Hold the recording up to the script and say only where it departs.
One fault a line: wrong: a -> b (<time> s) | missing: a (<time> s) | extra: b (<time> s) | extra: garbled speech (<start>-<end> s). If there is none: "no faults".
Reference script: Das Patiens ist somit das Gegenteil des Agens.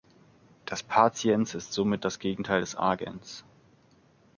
no faults